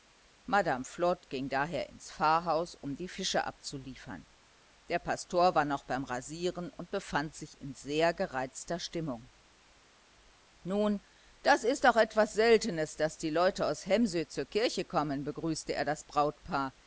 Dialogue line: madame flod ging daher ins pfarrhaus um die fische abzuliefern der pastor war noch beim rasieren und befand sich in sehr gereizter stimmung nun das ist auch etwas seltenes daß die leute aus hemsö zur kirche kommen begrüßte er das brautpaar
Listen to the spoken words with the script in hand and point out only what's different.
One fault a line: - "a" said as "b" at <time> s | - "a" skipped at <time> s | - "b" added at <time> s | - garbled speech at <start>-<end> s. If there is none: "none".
none